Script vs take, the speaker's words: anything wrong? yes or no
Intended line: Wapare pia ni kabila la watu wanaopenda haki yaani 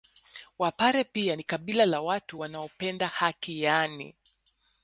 no